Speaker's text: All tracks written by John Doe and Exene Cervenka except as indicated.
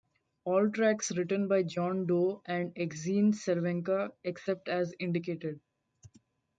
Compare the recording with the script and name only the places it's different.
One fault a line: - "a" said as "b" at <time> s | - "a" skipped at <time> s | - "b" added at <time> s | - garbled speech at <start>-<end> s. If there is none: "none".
none